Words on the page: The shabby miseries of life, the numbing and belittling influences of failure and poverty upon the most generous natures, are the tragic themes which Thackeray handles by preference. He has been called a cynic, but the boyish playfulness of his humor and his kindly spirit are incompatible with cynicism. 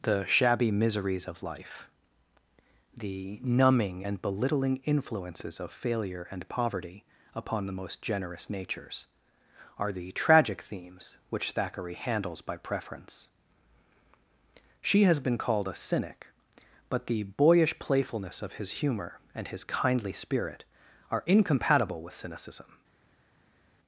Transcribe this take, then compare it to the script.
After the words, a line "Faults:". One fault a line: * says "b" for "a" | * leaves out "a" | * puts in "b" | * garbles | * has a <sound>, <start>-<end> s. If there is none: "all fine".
The shabby miseries of life, the numbing and belittling influences of failure and poverty upon the most generous natures, are the tragic themes which Thackeray handles by preference. She has been called a cynic, but the boyish playfulness of his humor and his kindly spirit are incompatible with cynicism.
Faults:
* says "She" for "He"